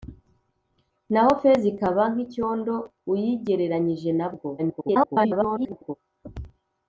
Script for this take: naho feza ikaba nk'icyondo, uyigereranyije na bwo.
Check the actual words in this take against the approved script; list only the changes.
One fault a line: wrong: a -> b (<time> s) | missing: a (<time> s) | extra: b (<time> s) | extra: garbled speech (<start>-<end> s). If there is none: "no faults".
extra: garbled speech (4.6-6.0 s)